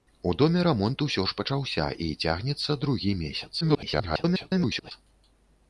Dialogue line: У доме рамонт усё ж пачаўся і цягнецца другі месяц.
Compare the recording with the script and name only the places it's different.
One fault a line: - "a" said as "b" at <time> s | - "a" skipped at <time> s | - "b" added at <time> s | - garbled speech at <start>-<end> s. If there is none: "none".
- garbled speech at 3.6-4.9 s